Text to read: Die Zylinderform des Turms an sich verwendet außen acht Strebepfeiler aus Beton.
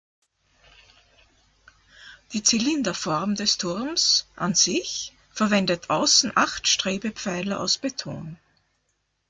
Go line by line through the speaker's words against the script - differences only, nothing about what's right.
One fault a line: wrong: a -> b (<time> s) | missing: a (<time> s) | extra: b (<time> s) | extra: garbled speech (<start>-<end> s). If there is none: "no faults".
no faults